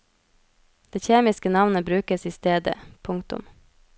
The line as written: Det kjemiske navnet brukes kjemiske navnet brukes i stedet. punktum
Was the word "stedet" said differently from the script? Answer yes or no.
no